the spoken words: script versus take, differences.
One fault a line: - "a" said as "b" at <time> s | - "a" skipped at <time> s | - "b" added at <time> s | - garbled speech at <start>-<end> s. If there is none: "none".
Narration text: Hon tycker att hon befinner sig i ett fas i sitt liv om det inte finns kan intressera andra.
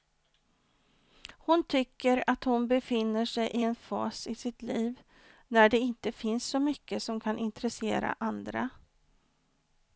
- "ett" said as "en" at 3.6 s
- "om" said as "när" at 5.5 s
- "så mycket som" added at 6.5 s